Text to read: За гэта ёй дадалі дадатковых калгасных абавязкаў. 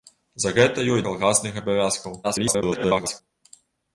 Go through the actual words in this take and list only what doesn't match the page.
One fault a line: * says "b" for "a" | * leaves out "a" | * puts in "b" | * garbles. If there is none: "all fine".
* leaves out "дадалі дадатковых"
* garbles